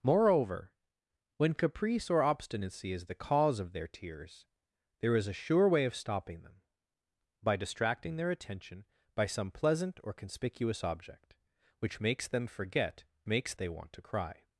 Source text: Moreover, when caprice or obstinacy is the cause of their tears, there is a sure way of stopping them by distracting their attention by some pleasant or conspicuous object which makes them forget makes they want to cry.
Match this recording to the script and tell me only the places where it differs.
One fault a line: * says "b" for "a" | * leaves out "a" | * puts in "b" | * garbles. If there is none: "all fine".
all fine